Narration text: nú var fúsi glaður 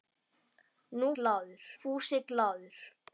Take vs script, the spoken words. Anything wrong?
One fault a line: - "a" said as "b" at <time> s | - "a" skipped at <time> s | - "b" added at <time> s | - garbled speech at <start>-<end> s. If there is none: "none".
- "var" said as "glaður" at 1.2 s